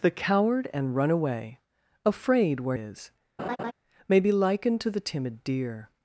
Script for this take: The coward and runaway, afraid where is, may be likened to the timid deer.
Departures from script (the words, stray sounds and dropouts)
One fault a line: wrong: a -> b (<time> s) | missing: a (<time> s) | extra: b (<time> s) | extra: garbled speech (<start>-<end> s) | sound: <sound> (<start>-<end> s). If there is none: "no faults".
sound: laugh (3.4-3.7 s)